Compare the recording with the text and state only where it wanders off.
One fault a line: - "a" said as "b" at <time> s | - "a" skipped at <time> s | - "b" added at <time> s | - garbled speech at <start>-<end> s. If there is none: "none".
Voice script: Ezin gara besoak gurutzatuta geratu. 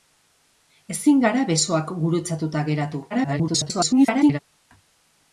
- garbled speech at 3.1-4.4 s